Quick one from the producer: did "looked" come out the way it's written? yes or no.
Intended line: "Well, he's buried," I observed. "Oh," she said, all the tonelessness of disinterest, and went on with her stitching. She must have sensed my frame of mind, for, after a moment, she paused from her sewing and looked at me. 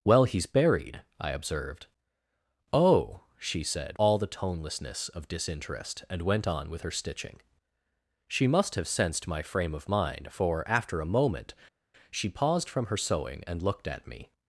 yes